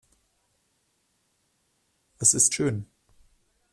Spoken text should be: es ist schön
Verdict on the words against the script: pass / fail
pass